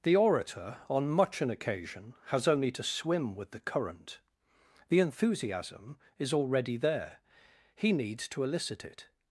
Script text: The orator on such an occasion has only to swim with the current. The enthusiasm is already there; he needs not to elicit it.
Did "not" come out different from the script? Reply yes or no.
yes